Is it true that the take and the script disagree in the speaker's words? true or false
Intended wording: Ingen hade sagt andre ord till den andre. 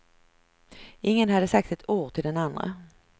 true